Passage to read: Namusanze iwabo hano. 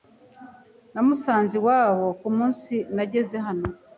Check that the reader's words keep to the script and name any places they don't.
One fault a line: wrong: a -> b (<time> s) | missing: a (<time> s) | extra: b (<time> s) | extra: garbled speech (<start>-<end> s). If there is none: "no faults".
extra: kumunsi nageze (2.2 s)